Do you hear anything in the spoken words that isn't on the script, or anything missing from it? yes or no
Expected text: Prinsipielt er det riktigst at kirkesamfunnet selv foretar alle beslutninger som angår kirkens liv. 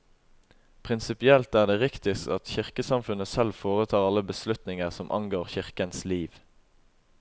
no